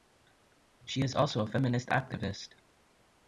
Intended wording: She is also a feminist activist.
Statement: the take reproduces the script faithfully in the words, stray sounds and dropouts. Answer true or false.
true